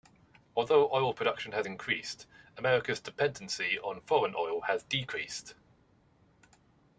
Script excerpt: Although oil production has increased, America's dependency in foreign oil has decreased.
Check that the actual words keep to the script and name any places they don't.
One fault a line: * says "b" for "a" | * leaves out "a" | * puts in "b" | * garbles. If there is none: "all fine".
* says "on" for "in"